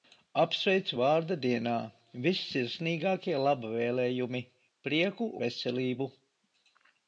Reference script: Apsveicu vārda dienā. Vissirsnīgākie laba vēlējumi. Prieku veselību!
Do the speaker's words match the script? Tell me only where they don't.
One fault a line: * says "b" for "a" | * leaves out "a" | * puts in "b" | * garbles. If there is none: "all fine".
all fine